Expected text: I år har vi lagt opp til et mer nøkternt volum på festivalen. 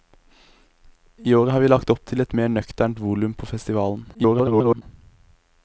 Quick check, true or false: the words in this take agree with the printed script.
false